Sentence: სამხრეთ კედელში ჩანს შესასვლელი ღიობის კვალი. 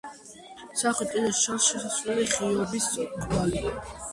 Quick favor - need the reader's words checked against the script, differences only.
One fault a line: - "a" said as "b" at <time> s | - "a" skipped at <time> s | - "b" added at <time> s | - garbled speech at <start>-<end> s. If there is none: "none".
none